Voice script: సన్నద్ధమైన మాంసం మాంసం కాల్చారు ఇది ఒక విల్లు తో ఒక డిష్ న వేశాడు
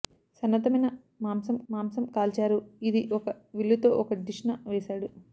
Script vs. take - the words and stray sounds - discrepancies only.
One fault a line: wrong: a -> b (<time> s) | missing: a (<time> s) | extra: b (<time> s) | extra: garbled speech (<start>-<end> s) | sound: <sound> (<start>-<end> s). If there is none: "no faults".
no faults